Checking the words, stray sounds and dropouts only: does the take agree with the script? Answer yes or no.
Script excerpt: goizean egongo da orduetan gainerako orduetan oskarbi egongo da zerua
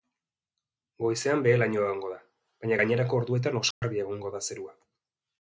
no